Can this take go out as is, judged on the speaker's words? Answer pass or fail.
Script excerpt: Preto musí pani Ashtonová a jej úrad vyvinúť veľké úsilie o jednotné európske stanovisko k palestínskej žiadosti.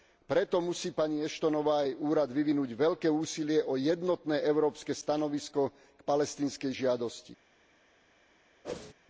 pass